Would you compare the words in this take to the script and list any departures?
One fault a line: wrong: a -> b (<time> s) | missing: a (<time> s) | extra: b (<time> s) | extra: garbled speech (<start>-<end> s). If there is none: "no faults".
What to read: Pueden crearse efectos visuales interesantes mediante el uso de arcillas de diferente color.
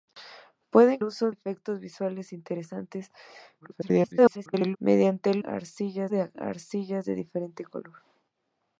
wrong: crearse -> uso (1.0 s)
extra: garbled speech (3.6-4.8 s)
wrong: uso -> arcillas (5.4 s)